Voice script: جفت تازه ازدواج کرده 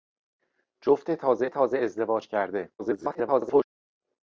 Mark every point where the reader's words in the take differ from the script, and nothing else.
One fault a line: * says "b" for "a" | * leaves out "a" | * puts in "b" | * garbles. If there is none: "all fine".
* puts in "تازه"
* garbles